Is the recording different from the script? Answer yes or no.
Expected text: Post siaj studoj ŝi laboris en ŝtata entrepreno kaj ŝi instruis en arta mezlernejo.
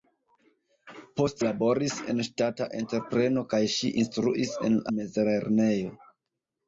yes